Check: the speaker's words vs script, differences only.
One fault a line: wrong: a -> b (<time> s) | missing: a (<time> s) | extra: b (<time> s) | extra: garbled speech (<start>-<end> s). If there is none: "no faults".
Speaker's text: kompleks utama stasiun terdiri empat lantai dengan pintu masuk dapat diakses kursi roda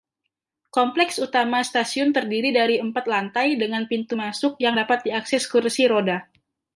extra: dari (2.6 s)
extra: yang (4.6 s)